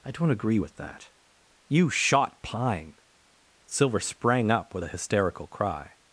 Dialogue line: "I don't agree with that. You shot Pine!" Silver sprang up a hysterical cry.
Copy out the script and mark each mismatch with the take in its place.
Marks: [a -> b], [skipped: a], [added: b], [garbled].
"I don't agree with that. You shot Pine!" Silver sprang up [added: with] a hysterical cry.